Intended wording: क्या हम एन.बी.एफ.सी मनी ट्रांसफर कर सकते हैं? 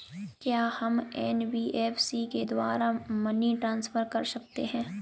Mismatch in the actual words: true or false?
true